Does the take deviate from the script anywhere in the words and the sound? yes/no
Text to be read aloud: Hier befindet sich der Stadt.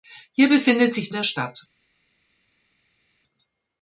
no